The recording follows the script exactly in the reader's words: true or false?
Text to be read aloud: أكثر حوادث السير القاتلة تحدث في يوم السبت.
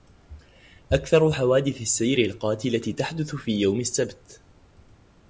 true